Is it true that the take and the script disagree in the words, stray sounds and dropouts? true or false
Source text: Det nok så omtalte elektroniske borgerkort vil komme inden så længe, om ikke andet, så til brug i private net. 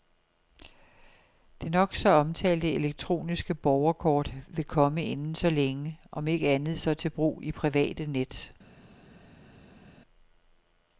false